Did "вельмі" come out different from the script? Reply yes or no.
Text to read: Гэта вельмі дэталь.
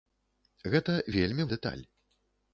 no